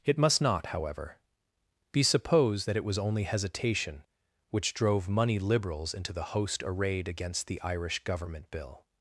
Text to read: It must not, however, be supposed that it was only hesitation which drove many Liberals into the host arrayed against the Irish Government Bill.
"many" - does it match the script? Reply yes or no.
no